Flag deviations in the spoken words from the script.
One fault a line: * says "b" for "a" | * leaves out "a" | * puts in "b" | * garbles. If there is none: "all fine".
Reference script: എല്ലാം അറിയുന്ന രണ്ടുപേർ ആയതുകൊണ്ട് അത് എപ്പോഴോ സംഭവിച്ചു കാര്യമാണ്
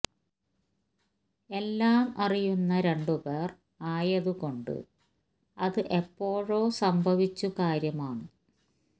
all fine